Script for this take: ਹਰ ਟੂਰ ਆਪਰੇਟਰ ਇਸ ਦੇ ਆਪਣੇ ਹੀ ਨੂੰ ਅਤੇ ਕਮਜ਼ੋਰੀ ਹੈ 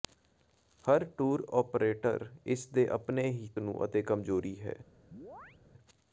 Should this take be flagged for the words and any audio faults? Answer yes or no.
yes